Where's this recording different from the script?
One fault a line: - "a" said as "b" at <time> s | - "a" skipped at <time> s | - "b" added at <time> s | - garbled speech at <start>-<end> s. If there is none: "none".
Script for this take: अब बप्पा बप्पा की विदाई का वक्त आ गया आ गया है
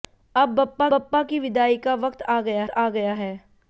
none